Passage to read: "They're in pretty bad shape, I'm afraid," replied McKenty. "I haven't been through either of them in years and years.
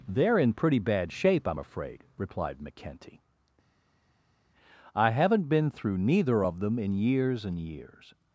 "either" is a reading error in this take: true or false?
true